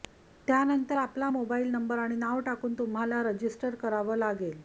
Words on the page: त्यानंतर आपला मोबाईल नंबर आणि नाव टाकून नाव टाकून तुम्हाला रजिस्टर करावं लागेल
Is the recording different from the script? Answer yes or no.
yes